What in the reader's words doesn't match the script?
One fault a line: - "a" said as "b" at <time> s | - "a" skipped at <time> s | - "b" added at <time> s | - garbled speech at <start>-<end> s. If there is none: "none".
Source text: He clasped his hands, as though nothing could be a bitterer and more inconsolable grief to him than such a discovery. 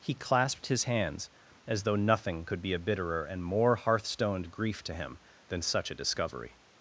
- "inconsolable" said as "hearthstoned" at 3.8 s